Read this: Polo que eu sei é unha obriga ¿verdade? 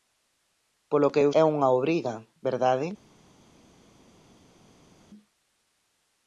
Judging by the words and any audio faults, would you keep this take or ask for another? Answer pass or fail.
fail